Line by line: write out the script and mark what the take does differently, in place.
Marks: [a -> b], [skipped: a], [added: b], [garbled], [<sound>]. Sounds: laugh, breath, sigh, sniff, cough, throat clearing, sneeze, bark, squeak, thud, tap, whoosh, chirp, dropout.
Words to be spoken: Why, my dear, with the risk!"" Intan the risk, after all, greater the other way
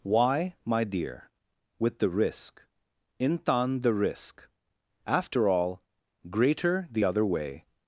Why, my dear, with the risk!"" Intan the risk, after all, greater the other way